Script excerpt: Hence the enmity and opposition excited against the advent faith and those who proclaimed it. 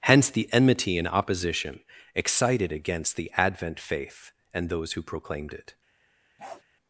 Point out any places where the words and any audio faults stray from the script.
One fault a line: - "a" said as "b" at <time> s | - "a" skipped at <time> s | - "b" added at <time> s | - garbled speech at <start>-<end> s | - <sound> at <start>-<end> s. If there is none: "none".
- bark at 6.4-6.6 s